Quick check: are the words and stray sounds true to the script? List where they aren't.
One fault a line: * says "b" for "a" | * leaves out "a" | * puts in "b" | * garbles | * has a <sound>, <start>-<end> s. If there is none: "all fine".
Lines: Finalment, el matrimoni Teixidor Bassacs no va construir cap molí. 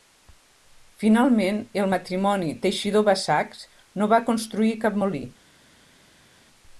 all fine